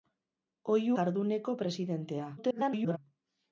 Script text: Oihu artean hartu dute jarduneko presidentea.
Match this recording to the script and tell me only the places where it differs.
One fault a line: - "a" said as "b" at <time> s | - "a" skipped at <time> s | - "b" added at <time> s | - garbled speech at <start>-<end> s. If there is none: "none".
- "artean hartu dute" skipped at 0.9 s
- garbled speech at 2.4-3.0 s